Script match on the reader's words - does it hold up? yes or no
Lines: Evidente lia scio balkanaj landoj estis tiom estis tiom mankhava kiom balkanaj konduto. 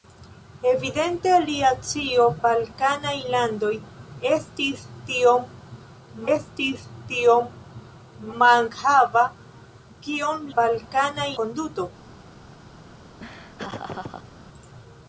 yes